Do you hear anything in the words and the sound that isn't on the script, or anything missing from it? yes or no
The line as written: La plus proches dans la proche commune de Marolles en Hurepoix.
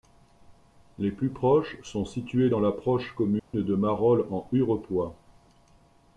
yes